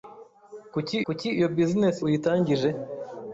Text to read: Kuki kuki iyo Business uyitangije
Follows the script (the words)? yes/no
yes